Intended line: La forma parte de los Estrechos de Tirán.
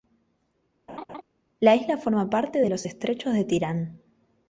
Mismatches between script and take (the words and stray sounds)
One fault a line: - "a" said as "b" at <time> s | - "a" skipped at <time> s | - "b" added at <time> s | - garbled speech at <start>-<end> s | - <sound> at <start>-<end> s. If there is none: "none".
- laugh at 0.9-1.2 s
- "isla" added at 1.8 s